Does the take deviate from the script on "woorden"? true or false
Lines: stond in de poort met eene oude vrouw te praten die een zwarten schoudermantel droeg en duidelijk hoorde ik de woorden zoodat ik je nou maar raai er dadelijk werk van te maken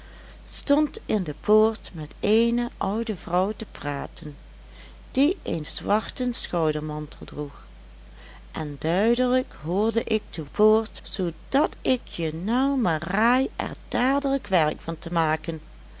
true